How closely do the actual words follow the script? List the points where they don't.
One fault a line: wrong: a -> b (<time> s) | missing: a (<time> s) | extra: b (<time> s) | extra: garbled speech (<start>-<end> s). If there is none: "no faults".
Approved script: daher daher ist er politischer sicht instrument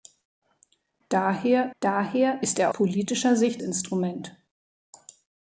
no faults